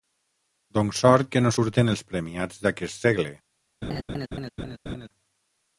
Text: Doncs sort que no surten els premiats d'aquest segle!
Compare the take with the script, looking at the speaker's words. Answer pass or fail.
pass